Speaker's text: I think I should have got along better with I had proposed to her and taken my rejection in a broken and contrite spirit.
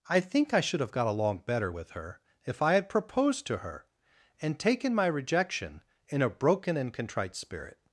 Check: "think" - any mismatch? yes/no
no